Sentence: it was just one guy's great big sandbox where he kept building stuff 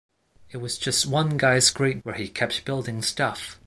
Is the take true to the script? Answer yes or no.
no